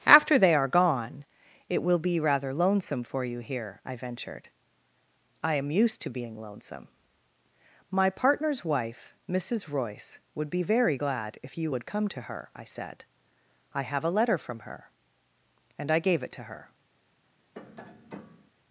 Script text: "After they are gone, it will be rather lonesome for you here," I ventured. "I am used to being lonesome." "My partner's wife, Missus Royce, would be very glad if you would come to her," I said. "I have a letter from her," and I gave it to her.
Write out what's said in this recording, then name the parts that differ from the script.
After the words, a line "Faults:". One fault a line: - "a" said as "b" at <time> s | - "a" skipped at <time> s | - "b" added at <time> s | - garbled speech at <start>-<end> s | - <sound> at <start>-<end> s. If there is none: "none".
"After they are gone, it will be rather lonesome for you here," I ventured. "I am used to being lonesome." "My partner's wife, Missus Royce, would be very glad if you would come to her," I said. "I have a letter from her," and I gave it to her.
Faults:
- tap at 17.5-18.5 s